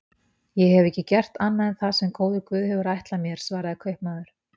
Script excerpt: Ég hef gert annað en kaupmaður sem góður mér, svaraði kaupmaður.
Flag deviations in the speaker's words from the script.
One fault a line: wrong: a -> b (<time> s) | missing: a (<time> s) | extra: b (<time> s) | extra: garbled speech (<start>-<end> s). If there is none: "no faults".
extra: ekki (0.9 s)
wrong: kaupmaður -> það (1.8 s)
extra: guð hefur ætlað (2.5 s)